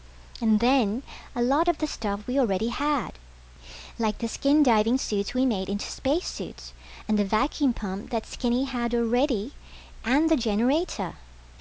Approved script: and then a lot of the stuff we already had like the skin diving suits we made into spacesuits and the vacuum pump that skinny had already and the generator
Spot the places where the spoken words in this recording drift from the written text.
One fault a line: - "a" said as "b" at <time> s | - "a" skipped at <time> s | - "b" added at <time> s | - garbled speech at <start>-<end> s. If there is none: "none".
none